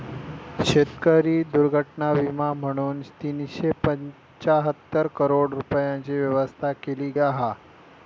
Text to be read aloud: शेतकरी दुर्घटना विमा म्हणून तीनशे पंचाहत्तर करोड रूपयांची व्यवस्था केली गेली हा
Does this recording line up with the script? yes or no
no